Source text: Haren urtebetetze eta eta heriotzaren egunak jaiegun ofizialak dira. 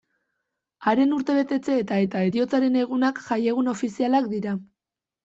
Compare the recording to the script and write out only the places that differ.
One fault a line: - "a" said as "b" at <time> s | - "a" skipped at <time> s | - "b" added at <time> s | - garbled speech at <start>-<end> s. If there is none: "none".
none